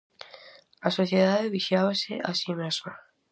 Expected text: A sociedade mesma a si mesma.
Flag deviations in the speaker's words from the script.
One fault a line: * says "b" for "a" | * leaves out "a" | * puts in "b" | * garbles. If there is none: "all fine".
* says "vixiábase" for "mesma"